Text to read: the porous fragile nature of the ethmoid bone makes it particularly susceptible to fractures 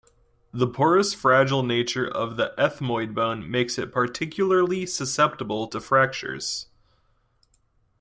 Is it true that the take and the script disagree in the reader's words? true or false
false